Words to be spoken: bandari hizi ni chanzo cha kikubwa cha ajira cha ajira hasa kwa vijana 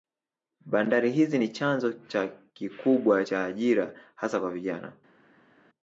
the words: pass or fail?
fail